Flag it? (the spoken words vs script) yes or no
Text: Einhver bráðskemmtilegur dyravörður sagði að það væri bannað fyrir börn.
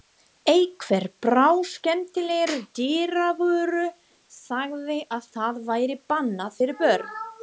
no